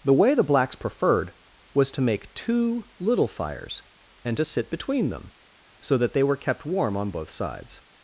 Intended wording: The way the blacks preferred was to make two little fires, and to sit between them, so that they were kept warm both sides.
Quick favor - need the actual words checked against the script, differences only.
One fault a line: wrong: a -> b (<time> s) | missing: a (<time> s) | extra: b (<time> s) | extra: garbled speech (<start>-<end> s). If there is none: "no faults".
extra: on (7.0 s)